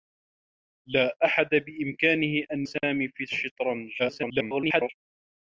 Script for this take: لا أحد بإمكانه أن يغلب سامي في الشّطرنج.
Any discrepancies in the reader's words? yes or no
yes